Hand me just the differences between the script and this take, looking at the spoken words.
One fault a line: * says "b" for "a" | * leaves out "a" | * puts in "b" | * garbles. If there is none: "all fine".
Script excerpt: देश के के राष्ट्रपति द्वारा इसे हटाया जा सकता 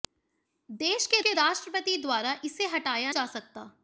all fine